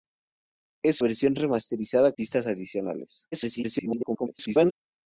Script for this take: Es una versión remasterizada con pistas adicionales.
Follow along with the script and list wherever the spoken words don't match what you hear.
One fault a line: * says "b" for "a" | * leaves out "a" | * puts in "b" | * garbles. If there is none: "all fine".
* leaves out "una"
* leaves out "con"
* garbles